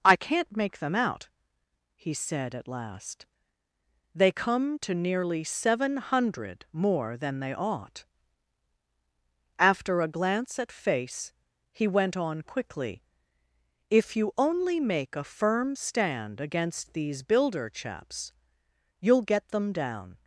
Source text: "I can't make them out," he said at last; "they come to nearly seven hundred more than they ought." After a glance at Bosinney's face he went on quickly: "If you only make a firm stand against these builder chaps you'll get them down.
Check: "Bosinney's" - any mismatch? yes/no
yes